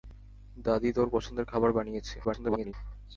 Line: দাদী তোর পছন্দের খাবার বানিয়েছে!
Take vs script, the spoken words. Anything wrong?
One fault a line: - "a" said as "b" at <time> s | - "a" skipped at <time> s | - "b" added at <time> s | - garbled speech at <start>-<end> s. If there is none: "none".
- garbled speech at 2.2-2.7 s